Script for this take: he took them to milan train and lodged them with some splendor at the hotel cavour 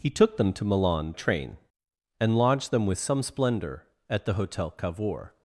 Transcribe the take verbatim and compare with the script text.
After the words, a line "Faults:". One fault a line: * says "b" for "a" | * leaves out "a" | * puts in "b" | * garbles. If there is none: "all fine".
he took them to milan train and lodged them with some splendor at the hotel cavour
Faults:
all fine